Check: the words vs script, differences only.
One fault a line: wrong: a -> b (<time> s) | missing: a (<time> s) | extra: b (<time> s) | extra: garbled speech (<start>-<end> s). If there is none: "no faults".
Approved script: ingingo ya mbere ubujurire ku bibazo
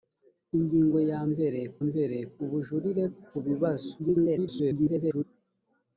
extra: mbere (1.9 s)
extra: garbled speech (4.0-5.2 s)